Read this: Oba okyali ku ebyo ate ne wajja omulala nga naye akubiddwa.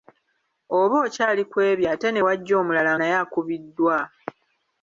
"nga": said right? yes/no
no